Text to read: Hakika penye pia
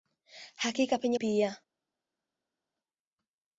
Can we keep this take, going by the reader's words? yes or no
yes